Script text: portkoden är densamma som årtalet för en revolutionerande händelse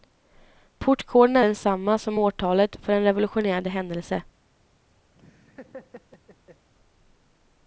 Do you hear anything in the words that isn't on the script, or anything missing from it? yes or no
no